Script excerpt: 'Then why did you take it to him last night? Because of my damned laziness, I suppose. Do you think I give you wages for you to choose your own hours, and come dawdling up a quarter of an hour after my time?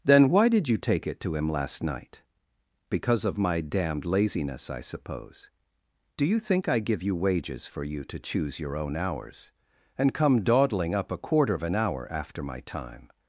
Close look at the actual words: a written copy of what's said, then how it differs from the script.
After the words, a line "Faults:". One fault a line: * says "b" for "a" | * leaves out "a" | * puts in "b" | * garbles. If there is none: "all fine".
'Then why did you take it to him last night? Because of my damned laziness, I suppose. Do you think I give you wages for you to choose your own hours, and come dawdling up a quarter of an hour after my time?
Faults:
all fine